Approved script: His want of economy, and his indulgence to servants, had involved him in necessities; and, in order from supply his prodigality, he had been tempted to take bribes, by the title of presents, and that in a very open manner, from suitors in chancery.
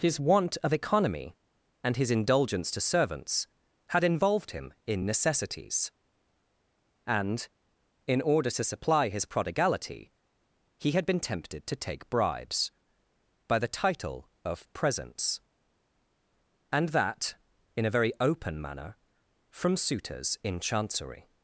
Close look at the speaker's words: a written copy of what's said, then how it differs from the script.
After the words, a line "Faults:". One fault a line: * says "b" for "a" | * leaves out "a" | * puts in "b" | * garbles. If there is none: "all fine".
His want of economy, and his indulgence to servants, had involved him in necessities; and, in order to supply his prodigality, he had been tempted to take bribes, by the title of presents, and that in a very open manner, from suitors in chancery.
Faults:
* says "to" for "from"